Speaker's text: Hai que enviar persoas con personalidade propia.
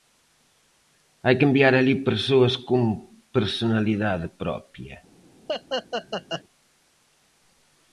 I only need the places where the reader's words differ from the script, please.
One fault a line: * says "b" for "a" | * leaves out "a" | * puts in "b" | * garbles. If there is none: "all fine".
* puts in "alí"